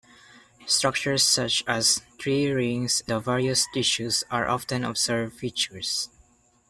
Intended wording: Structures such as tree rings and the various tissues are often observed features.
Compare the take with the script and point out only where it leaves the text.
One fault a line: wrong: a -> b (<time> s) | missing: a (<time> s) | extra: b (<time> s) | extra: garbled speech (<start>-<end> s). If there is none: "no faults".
missing: and (3.0 s)